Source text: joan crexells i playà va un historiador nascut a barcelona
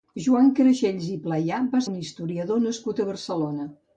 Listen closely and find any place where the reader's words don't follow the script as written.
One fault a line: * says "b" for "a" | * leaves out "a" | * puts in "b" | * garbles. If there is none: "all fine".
all fine